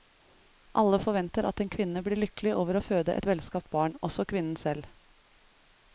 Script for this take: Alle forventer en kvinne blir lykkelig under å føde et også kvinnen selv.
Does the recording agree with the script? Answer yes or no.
no